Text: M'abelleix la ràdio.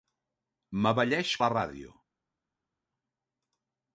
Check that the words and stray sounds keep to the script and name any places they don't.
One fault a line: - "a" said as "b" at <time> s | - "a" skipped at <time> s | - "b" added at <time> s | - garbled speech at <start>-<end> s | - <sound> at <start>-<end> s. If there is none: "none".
none